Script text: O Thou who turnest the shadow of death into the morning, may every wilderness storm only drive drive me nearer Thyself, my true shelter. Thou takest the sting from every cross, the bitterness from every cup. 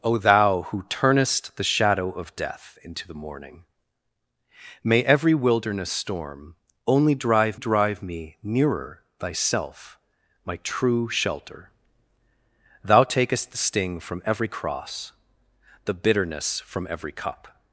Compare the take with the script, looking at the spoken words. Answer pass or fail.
pass